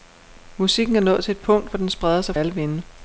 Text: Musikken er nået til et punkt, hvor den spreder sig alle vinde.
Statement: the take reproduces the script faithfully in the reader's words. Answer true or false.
true